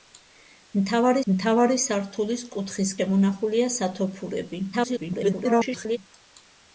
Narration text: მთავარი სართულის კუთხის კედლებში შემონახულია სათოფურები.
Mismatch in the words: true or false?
true